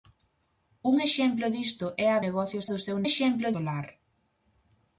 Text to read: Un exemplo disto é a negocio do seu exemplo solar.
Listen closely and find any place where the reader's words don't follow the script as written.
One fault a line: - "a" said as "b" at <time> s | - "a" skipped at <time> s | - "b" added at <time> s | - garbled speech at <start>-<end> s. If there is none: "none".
none